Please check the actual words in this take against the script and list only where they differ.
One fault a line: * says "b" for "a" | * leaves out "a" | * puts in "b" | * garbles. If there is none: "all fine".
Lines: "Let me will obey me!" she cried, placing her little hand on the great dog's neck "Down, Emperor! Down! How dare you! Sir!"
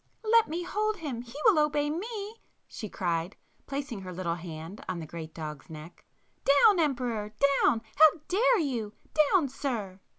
* puts in "hold him He"
* puts in "Down"